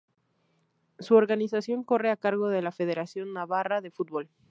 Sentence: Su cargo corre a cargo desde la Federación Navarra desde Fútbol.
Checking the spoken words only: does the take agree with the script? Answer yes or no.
no